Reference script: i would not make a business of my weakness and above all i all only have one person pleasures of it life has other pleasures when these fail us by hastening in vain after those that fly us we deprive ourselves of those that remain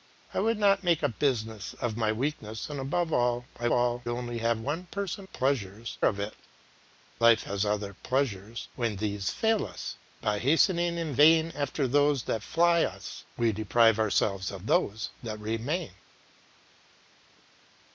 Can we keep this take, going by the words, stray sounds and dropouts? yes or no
yes